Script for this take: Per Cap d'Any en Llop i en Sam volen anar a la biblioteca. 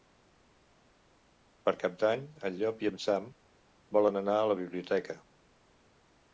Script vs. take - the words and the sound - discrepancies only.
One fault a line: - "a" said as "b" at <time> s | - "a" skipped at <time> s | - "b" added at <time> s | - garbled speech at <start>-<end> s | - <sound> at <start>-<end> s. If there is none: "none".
none